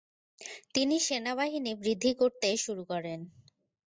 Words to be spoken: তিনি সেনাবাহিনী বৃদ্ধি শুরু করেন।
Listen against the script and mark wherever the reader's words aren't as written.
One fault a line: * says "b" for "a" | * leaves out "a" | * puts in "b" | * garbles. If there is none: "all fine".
* puts in "করতে"